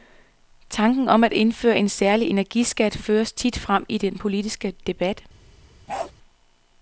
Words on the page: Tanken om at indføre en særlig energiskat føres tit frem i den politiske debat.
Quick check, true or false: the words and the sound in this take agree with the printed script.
false